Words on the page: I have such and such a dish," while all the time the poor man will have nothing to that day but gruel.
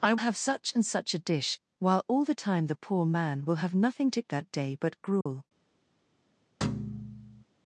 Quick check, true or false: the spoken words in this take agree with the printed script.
true